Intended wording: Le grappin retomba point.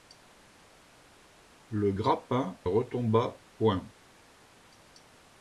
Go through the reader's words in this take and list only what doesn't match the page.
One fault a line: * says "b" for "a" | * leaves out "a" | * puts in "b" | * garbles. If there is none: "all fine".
all fine